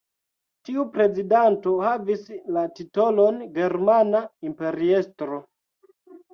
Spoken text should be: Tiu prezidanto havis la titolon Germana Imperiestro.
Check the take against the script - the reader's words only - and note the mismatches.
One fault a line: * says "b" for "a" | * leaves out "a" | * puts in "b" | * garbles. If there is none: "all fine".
all fine